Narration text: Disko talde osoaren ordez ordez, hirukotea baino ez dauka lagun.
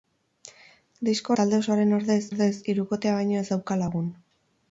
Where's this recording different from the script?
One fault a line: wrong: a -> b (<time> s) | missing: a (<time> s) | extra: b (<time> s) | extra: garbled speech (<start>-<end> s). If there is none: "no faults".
no faults